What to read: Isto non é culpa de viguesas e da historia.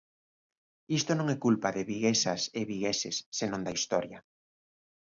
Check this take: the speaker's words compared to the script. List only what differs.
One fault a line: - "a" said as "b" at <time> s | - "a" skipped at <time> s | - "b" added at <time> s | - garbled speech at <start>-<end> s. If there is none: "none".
- "vigueses senón" added at 2.7 s